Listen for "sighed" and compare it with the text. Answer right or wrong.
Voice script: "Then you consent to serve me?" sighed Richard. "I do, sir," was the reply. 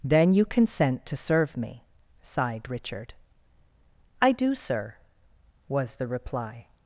right